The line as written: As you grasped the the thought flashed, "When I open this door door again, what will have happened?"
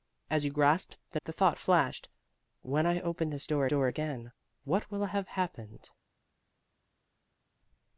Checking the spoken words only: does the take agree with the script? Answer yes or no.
yes